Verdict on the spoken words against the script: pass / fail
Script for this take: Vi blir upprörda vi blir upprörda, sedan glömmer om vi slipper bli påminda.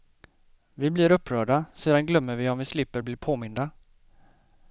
fail